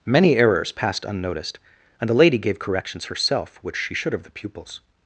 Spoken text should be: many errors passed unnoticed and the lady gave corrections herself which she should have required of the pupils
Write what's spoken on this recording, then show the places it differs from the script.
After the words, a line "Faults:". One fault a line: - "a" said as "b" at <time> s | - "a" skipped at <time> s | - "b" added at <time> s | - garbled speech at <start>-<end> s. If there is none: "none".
many errors passed unnoticed and the lady gave corrections herself which she should have of the pupils
Faults:
- "required" skipped at 4.2 s